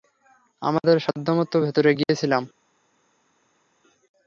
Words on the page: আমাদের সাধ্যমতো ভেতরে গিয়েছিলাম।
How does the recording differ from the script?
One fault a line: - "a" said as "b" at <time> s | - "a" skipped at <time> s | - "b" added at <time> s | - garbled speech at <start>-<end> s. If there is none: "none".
none